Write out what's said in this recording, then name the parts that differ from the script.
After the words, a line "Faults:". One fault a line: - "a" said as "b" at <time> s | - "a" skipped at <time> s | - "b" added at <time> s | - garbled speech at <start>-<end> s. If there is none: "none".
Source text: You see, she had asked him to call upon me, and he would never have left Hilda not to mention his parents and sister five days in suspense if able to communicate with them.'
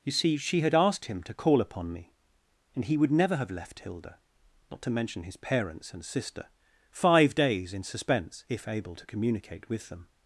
You see, she had asked him to call upon me, and he would never have left Hilda not to mention his parents and sister five days in suspense if able to communicate with them.'
Faults:
none